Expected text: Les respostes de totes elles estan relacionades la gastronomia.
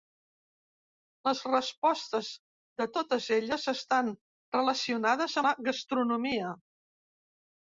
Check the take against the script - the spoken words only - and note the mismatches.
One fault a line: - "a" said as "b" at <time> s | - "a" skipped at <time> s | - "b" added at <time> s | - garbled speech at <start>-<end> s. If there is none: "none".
none